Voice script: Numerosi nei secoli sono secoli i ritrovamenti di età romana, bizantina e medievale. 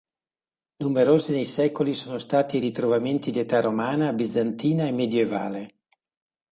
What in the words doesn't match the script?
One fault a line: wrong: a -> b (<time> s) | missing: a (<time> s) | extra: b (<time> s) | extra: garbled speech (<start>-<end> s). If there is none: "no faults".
wrong: secoli -> stati (2.2 s)